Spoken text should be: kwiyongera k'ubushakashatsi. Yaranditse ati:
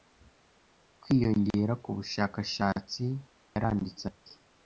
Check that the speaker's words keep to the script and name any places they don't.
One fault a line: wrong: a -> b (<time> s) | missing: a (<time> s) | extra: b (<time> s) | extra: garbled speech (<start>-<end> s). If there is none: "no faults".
no faults